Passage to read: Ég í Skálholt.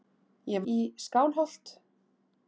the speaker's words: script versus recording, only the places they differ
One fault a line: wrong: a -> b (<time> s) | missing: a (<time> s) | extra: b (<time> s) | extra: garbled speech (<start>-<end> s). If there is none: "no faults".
no faults